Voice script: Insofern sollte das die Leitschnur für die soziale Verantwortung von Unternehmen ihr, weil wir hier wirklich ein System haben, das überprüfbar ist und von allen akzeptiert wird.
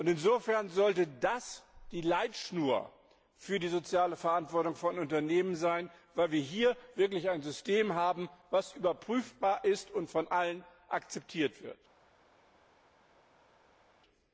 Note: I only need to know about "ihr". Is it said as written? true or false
false